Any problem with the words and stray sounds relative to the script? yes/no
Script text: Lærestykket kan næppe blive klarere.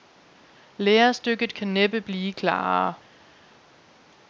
no